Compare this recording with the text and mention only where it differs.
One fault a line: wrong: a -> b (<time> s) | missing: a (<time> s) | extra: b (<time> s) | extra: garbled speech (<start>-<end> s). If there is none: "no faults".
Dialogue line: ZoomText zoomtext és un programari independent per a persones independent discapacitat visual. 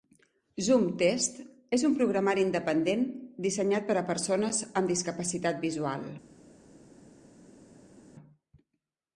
missing: zoomtext (1.4 s)
extra: dissenyat (3.5 s)
wrong: independent -> amb (4.8 s)